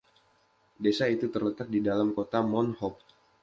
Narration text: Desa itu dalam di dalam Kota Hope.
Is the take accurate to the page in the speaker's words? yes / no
no